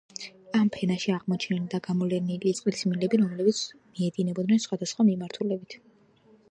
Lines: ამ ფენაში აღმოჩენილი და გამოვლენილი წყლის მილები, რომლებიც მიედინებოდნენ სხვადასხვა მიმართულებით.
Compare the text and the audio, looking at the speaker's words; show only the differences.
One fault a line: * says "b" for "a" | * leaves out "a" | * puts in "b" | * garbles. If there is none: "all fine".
all fine